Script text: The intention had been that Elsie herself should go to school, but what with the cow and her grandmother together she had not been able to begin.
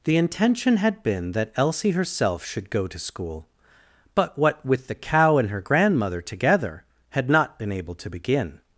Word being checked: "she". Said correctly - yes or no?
no